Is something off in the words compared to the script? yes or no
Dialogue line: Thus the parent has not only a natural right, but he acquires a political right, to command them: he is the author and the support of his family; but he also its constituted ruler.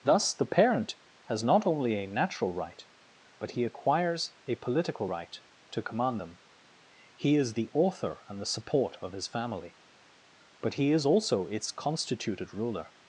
yes